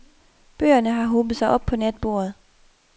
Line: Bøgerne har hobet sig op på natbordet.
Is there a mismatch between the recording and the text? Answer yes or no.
no